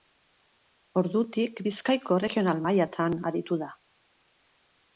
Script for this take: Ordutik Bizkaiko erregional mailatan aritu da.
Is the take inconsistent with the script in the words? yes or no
no